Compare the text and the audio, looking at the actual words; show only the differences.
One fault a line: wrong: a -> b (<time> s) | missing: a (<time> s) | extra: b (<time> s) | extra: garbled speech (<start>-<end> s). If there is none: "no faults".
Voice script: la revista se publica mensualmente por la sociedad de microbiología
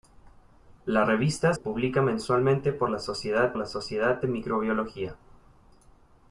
missing: se (1.5 s)
extra: la sociedad (3.6 s)